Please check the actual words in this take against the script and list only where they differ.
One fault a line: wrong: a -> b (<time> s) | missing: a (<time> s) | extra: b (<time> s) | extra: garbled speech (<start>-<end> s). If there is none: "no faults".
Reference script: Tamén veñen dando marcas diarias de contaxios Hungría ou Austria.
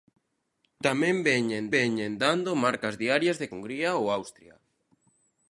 extra: veñen (1.8 s)
missing: contaxios (3.5 s)